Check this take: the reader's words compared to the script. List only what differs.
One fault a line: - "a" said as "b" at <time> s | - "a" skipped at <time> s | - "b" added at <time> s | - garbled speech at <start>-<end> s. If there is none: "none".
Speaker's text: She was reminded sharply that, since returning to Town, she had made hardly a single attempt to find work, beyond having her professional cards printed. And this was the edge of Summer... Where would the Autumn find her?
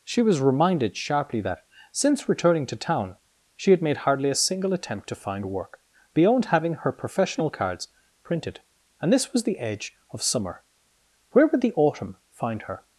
none